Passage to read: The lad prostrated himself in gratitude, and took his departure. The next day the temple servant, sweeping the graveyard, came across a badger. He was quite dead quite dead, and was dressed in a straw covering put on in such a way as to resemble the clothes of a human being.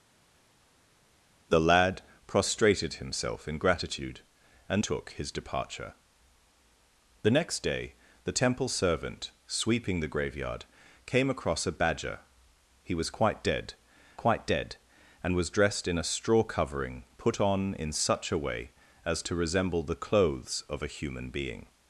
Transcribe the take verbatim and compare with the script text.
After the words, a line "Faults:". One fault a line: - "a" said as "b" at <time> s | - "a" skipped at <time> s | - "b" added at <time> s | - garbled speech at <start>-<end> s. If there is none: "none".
The lad prostrated himself in gratitude, and took his departure. The next day the temple servant, sweeping the graveyard, came across a badger. He was quite dead quite dead, and was dressed in a straw covering put on in such a way as to resemble the clothes of a human being.
Faults:
none